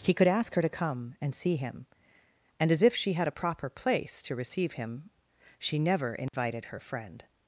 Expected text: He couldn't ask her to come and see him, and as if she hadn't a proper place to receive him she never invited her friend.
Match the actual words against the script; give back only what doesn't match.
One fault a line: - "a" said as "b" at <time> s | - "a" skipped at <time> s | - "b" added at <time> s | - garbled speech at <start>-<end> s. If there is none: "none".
- "couldn't" said as "could" at 0.1 s
- "hadn't" said as "had" at 3.1 s